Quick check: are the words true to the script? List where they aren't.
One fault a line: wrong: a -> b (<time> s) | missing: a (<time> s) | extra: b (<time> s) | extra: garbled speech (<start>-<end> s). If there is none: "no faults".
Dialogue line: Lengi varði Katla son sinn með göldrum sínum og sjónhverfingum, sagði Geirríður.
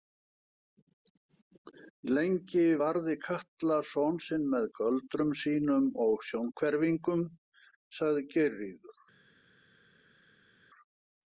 no faults